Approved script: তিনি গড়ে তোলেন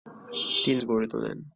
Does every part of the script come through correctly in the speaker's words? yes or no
yes